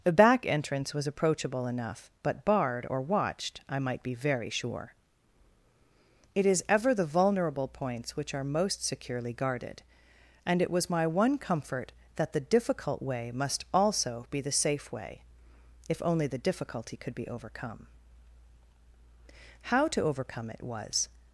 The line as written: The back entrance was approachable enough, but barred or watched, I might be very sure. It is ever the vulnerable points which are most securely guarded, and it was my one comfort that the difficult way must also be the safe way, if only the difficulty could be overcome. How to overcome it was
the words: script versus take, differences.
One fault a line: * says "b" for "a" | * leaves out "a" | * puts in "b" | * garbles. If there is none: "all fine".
all fine